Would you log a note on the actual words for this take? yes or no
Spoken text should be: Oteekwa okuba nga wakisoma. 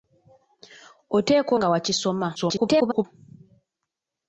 yes